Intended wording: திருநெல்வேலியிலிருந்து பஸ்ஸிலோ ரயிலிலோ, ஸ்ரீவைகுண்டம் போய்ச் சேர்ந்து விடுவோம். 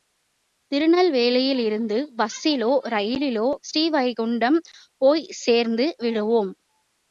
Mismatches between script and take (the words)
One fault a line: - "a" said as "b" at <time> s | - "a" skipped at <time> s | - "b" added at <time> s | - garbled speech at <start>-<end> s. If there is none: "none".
none